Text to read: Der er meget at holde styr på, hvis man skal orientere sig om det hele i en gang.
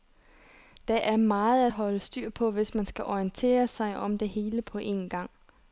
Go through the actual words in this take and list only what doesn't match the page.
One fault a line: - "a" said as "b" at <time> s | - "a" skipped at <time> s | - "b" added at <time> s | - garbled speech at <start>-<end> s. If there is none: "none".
- "i" said as "på" at 4.6 s